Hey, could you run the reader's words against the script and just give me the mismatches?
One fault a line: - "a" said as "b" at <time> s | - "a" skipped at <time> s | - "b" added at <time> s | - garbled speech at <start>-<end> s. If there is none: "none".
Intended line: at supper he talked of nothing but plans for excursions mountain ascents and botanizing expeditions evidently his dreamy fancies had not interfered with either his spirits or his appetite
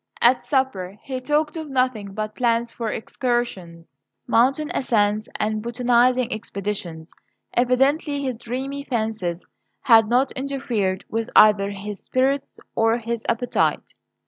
none